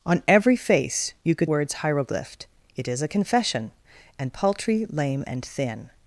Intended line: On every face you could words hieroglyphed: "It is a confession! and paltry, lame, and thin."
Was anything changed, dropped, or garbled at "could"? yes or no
no